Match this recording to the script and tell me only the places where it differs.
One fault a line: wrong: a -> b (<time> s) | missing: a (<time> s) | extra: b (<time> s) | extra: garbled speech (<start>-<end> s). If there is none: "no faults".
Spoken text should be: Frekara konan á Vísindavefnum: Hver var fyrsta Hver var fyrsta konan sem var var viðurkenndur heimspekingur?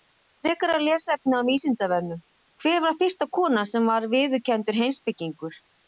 wrong: konan -> lesefni (0.8 s)
missing: Hver var fyrsta (3.3 s)
missing: var (4.1 s)